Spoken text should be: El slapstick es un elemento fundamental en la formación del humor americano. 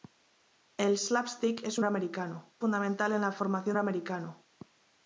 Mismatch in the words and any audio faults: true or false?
true